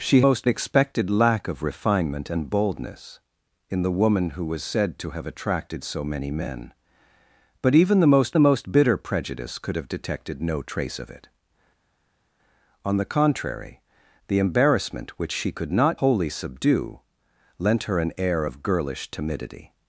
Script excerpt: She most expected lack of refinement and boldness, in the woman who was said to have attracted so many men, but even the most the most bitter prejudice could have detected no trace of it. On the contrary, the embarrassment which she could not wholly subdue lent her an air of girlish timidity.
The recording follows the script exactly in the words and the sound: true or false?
true